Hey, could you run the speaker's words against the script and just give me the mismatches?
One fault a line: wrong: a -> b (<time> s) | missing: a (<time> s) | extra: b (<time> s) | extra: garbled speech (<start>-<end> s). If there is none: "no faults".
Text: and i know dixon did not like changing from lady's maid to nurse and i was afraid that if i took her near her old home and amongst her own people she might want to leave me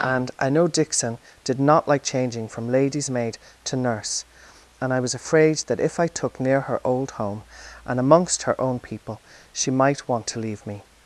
missing: her (6.4 s)